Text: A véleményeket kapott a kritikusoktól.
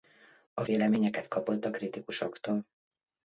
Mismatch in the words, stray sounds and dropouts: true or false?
false